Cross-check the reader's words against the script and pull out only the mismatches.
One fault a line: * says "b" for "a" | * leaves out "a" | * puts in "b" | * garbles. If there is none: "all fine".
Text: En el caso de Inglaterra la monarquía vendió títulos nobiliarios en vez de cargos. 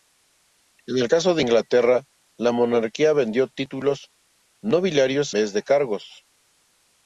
* leaves out "en"